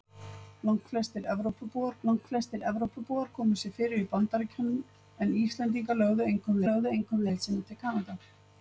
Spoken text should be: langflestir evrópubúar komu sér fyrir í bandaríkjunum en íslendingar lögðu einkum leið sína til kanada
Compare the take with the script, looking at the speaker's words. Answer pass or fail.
fail